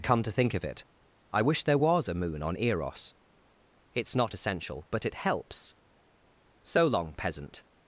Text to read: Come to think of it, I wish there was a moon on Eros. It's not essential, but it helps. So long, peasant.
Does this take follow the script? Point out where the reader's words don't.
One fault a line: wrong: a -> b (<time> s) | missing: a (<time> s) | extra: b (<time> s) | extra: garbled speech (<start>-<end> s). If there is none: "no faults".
no faults